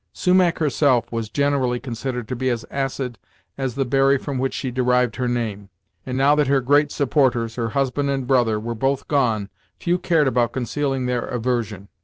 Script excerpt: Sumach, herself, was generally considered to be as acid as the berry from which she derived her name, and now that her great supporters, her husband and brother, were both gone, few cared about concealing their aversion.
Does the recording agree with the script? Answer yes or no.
yes